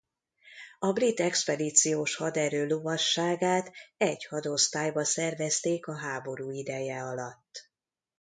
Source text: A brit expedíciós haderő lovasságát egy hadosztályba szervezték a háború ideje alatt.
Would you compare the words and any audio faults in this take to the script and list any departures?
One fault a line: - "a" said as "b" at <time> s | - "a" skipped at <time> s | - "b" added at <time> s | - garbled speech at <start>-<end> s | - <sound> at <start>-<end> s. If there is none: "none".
none